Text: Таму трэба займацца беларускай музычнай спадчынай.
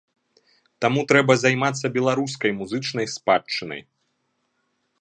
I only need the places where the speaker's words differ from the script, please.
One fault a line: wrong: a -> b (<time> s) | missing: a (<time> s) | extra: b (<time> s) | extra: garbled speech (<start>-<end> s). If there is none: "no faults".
no faults